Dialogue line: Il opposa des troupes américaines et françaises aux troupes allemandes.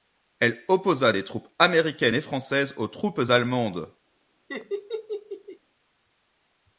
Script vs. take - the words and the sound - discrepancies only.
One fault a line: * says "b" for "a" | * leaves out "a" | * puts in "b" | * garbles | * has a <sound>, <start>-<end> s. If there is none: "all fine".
* says "Elle" for "Il"
* has a laugh, 4.5-5.6 s